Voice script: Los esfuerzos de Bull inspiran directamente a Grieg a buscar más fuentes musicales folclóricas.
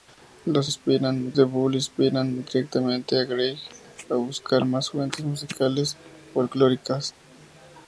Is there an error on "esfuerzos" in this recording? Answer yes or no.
yes